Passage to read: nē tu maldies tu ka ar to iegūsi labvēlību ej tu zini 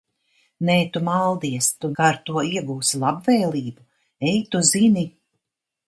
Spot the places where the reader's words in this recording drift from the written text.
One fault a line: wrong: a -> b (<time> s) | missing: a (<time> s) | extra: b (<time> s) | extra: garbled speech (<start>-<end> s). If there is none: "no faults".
no faults